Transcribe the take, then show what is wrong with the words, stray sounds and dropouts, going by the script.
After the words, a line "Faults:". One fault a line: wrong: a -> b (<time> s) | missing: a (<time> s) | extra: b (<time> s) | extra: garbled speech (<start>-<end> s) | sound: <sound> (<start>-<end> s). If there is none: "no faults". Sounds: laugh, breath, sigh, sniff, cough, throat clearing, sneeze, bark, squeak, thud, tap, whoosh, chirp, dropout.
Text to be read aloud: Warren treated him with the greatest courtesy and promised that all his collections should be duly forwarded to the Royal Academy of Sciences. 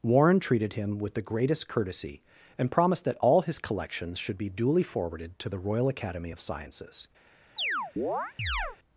Warren treated him with the greatest courtesy and promised that all his collections should be duly forwarded to the Royal Academy of Sciences.
Faults:
sound: chirp (7.6-8.8 s)